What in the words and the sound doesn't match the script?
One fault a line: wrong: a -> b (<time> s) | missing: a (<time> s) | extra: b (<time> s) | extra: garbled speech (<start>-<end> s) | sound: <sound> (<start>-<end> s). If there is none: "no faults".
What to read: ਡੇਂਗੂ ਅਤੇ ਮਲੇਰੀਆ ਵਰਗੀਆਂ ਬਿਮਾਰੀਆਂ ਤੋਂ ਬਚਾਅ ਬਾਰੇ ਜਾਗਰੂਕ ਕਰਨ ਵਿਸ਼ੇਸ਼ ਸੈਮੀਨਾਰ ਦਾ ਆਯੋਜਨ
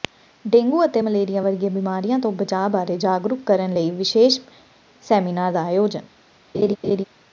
extra: ਲਈ (3.7 s)
sound: laugh (6.5-7.0 s)